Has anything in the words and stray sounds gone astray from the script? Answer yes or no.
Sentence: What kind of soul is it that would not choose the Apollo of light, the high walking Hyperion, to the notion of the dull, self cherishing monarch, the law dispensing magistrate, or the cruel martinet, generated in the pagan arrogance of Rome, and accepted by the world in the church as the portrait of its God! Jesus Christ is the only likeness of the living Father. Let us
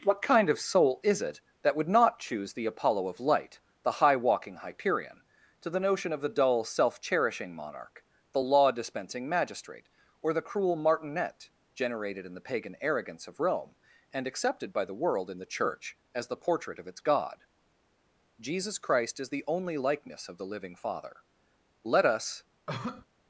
yes